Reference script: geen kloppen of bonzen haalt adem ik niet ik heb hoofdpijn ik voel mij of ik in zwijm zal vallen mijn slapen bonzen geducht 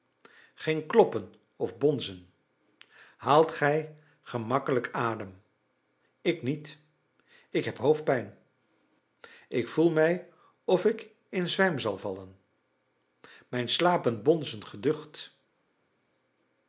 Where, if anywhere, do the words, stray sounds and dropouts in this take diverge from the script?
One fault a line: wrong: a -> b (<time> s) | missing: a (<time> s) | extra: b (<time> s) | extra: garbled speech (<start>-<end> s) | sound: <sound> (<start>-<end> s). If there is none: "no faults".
extra: gij gemakkelijk (3.5 s)